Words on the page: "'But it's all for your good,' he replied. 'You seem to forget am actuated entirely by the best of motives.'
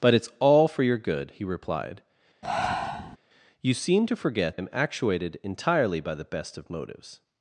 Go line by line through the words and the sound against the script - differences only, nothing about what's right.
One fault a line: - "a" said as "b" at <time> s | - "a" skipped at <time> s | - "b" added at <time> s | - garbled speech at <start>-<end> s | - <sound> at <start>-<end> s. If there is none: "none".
- breath at 2.4-3.2 s